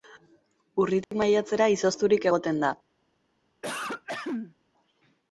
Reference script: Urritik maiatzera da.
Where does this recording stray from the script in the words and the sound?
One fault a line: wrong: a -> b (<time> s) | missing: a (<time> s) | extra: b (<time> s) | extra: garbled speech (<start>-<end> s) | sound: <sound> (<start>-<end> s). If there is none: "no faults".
sound: dropout (1.0-1.1 s)
extra: izozturik egoten (1.8 s)
sound: throat clearing (3.6-4.6 s)